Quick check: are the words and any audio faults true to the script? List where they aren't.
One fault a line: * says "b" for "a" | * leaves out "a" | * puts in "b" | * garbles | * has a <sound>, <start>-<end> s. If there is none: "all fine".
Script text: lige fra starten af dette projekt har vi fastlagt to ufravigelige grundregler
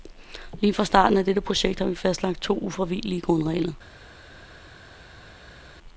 all fine